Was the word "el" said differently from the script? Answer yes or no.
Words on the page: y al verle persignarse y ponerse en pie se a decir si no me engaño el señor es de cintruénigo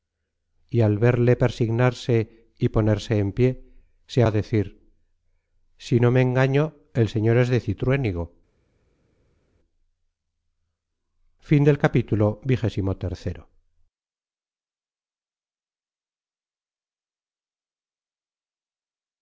no